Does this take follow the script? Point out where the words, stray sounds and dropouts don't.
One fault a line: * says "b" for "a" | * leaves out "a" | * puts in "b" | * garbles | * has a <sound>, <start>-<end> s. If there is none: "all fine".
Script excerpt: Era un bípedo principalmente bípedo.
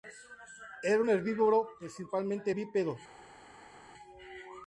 * says "herbívoro" for "bípedo"